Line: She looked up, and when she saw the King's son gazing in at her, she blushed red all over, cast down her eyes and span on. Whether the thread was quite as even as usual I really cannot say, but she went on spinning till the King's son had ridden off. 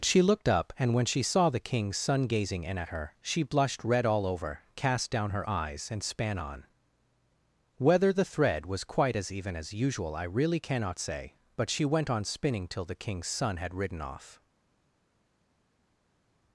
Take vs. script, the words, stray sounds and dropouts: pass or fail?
pass